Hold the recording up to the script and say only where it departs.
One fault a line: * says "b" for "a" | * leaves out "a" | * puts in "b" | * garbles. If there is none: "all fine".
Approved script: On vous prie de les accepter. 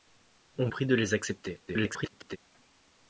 * leaves out "vous"
* garbles